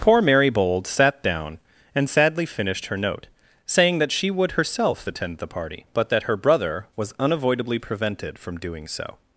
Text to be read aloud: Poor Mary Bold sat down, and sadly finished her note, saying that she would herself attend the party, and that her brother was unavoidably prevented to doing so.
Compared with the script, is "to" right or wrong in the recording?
wrong